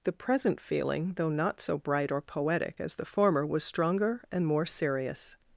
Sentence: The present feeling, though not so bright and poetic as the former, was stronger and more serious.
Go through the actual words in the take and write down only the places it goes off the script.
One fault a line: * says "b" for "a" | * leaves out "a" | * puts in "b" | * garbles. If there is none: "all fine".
* says "or" for "and"